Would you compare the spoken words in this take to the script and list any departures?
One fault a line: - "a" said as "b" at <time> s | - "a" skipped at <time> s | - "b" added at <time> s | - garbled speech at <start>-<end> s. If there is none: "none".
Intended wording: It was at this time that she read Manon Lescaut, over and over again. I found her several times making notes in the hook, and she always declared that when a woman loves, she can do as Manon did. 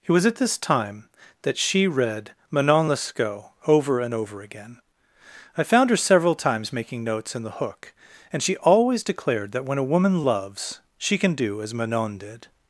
none